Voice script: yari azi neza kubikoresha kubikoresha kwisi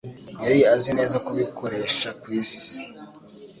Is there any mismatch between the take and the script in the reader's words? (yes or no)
yes